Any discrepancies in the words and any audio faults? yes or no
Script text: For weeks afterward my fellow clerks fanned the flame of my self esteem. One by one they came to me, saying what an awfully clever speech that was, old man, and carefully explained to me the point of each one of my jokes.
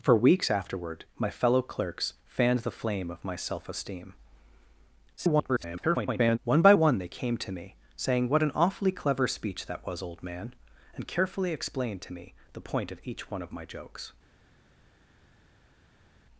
yes